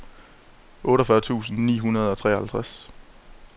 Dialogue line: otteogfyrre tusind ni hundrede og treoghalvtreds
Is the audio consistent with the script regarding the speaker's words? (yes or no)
yes